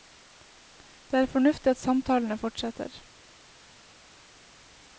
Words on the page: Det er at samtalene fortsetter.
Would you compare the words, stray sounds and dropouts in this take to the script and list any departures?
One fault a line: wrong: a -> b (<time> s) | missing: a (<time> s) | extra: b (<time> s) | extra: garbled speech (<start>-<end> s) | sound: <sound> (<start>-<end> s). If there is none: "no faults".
extra: fornuftig (1.2 s)